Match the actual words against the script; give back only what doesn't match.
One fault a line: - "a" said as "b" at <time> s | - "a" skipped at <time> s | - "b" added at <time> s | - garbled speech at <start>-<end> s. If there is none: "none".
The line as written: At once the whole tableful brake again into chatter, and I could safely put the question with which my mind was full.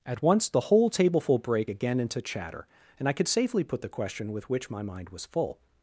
none